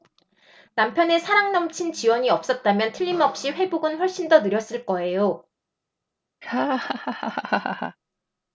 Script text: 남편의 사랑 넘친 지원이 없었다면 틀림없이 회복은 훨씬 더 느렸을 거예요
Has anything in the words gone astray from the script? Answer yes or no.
no